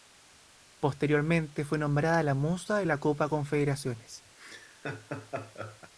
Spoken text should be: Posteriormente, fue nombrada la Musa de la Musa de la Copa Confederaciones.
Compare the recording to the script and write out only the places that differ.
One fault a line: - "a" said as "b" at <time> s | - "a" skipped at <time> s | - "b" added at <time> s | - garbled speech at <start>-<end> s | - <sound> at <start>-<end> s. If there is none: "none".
- "Musa de la" skipped at 3.0 s
- laugh at 4.4-5.9 s